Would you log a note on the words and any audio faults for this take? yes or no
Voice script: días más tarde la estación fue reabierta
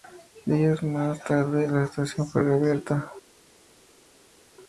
no